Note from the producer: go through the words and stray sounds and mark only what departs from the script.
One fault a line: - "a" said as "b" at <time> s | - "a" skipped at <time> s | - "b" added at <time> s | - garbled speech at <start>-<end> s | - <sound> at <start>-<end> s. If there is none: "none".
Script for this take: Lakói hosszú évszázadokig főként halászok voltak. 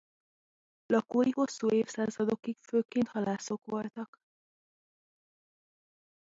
none